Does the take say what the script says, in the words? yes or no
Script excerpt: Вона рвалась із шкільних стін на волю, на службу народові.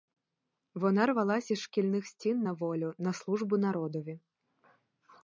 yes